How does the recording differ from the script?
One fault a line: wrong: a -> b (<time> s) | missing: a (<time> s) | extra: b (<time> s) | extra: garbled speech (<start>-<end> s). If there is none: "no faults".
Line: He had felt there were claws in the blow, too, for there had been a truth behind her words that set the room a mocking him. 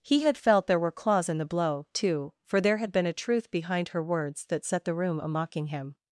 no faults